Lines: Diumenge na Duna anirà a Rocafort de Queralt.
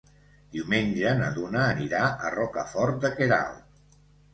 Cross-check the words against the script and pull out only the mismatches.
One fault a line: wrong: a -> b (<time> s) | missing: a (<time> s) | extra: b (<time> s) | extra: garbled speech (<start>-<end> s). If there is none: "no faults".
no faults